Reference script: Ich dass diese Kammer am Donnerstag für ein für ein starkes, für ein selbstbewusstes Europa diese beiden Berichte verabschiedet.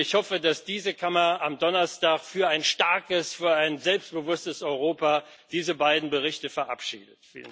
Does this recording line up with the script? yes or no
no